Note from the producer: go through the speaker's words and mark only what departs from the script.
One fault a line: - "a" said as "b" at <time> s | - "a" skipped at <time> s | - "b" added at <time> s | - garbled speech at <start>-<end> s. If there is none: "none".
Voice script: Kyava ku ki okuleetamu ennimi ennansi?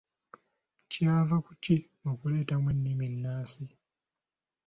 none